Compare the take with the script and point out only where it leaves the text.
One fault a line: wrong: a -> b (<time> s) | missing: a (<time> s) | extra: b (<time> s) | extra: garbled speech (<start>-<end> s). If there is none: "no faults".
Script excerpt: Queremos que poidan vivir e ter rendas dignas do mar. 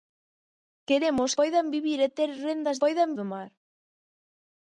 missing: que (1.3 s)
wrong: dignas -> poidan (2.8 s)